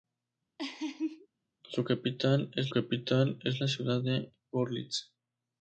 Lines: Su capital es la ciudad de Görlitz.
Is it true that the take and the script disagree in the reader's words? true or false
true